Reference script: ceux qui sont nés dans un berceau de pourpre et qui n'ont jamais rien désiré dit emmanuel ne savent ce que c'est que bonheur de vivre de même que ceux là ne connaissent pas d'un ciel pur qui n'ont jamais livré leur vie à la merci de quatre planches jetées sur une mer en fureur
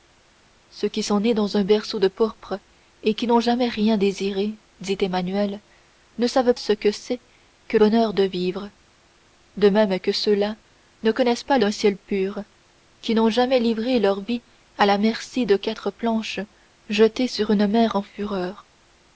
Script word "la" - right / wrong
right